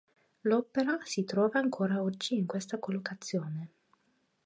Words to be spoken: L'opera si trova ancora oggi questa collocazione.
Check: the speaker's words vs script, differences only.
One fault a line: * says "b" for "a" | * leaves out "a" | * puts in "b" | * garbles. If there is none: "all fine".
* puts in "in"